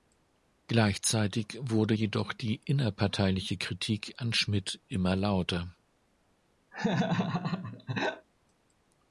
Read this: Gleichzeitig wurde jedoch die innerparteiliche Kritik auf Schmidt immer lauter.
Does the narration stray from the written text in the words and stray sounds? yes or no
yes